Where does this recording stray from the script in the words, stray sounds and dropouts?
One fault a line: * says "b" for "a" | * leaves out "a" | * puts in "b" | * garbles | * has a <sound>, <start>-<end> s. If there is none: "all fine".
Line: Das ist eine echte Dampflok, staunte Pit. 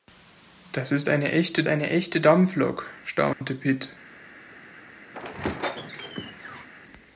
* puts in "eine echte"
* has a dropout, 3.3-3.4 s
* has a squeak, 5.1-6.7 s